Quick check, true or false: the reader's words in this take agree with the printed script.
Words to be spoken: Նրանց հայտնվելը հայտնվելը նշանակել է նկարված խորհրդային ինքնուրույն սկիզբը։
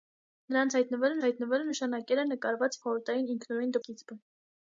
true